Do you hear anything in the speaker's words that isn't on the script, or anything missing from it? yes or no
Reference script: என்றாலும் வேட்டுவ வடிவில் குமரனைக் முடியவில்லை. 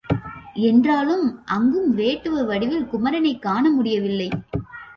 yes